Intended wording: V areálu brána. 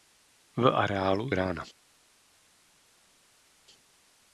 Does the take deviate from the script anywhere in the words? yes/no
no